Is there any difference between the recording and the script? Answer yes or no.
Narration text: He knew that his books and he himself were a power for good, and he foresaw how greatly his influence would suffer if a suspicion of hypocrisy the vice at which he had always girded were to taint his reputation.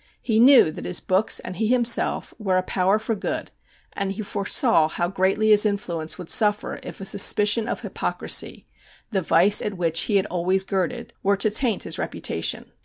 no